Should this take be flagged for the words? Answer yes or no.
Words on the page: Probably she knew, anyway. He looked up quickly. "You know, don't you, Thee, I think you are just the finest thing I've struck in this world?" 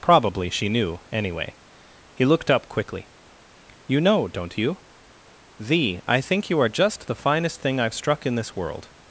no